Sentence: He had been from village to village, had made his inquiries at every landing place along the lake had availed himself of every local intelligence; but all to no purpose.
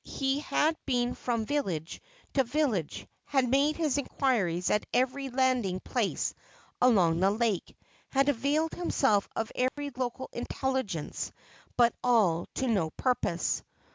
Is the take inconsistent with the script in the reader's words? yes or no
no